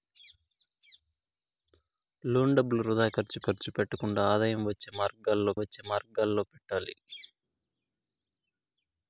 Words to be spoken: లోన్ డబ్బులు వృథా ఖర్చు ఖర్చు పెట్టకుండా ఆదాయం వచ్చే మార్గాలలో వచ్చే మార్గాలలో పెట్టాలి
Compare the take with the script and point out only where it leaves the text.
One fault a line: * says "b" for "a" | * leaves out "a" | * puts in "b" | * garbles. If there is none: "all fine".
all fine